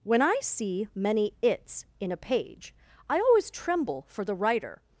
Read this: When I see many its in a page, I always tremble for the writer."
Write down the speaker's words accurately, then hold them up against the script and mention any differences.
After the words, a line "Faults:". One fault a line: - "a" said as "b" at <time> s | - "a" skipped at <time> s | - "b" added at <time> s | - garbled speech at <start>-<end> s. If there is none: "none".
When I see many its in a page, I always tremble for the writer."
Faults:
none